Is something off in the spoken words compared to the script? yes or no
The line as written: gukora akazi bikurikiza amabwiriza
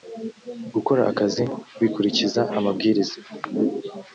no